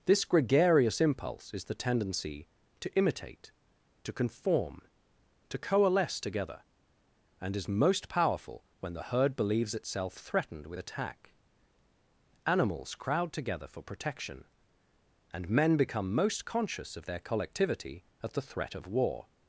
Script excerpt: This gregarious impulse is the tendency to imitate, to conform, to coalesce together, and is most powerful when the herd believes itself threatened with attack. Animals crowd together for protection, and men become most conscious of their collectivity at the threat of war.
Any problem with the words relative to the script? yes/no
no